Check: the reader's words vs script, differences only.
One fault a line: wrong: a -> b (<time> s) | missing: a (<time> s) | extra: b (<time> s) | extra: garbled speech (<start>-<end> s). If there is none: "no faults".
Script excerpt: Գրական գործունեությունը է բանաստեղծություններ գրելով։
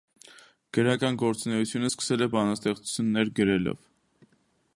extra: սկսել (1.9 s)